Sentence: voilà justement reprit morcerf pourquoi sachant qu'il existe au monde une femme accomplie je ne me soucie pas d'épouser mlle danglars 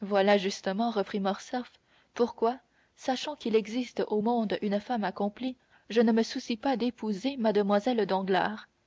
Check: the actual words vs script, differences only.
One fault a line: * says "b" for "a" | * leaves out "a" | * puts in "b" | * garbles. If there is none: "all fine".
all fine